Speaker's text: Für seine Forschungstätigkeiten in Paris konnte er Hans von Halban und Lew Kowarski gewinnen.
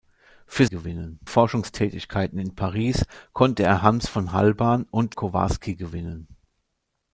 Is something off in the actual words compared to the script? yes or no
yes